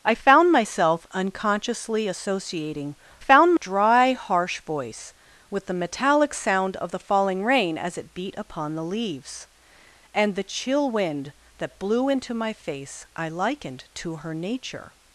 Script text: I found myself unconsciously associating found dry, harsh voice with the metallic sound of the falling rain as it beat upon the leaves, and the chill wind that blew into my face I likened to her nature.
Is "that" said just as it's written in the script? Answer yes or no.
yes